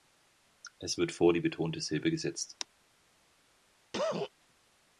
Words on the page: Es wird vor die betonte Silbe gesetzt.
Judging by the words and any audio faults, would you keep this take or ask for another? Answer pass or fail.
fail